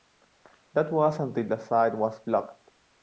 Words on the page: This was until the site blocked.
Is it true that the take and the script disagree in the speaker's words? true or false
true